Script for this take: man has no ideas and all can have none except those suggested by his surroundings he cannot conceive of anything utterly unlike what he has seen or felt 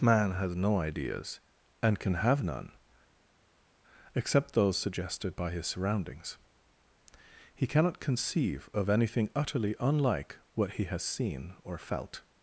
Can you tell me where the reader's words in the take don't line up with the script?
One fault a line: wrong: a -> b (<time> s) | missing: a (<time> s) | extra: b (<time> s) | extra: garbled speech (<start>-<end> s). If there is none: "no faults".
missing: all (2.0 s)